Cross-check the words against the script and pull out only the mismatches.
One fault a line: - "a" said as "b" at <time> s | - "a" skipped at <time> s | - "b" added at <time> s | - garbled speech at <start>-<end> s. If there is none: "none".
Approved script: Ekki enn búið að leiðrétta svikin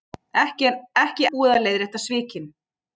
- "enn" skipped at 1.3 s